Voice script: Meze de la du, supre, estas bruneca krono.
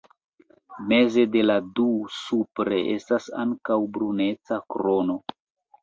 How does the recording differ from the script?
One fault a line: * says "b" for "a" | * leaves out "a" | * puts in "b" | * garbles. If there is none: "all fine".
* puts in "ankaŭ"